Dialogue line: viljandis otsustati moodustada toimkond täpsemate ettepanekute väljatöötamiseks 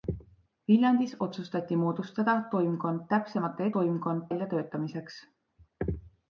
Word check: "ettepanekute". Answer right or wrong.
wrong